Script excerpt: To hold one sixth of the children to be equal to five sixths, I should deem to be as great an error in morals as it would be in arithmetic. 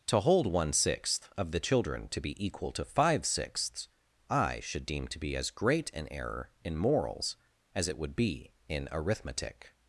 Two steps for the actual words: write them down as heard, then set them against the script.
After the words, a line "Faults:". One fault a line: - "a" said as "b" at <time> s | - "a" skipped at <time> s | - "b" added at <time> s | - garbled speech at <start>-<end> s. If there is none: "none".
To hold one sixth of the children to be equal to five sixths, I should deem to be as great an error in morals as it would be in arithmetic.
Faults:
none